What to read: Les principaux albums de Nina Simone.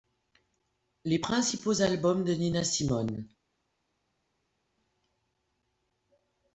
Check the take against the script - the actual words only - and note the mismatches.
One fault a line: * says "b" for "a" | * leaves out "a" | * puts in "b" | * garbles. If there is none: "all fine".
all fine